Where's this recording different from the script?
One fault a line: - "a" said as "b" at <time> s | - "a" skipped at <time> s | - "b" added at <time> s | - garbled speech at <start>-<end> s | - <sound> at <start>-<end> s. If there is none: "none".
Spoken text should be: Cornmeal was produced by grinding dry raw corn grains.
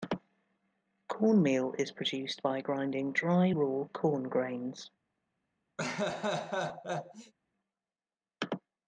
- "was" said as "is" at 1.8 s
- laugh at 5.8-7.3 s